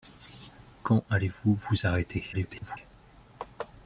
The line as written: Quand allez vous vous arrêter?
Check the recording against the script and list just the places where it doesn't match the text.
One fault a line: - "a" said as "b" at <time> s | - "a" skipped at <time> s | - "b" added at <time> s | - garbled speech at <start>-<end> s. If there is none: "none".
- garbled speech at 2.3-2.8 s